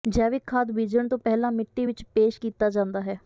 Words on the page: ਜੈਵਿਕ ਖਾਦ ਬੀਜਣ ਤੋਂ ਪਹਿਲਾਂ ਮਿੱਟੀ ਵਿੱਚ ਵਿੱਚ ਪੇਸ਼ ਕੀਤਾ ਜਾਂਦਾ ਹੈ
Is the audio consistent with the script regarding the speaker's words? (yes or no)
no